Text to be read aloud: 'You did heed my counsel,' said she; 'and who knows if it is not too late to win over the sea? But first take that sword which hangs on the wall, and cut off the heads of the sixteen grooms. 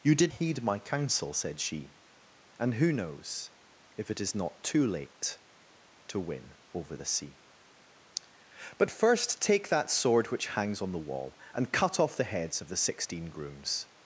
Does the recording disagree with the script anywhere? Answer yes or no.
no